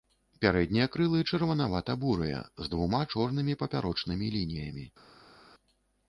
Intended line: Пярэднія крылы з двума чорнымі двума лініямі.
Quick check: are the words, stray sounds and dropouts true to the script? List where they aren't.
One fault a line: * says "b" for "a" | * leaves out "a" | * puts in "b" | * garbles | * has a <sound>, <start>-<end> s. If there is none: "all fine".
* puts in "чырванавата бурыя"
* says "папярочнымі" for "двума"